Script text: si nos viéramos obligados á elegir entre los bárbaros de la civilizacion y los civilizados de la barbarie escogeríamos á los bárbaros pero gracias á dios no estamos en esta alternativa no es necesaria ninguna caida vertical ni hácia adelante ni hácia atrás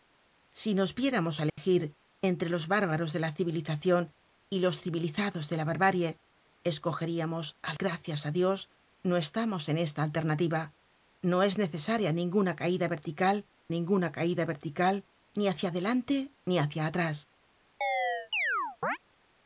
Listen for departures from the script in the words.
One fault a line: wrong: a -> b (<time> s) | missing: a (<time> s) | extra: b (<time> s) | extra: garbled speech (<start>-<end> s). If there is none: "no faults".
missing: obligados (1.4 s)
missing: los bárbaros pero (7.7 s)
extra: ninguna caida vertical (13.8 s)